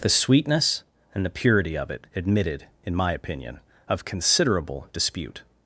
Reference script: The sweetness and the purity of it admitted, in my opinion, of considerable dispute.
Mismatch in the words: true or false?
false